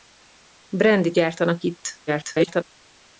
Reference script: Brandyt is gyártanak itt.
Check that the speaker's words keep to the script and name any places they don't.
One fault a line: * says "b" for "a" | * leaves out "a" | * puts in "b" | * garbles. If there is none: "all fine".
* leaves out "is"
* garbles